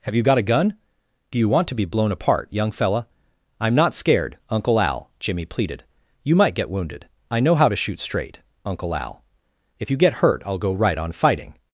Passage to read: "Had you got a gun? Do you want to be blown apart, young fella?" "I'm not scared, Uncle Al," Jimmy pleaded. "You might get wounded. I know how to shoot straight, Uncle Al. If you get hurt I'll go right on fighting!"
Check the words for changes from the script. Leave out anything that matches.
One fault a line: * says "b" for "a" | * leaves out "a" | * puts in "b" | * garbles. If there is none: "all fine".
* says "Have" for "Had"